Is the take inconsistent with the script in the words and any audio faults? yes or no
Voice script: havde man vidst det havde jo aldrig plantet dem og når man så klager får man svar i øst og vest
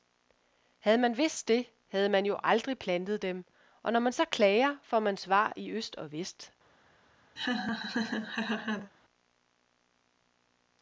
yes